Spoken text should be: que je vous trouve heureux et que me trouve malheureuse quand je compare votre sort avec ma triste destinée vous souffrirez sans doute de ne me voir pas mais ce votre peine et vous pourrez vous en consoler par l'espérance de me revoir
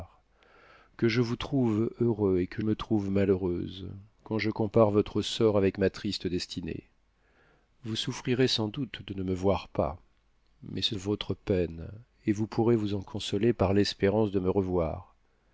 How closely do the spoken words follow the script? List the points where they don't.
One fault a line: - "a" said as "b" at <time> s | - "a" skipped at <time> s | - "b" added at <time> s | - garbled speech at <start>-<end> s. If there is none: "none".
none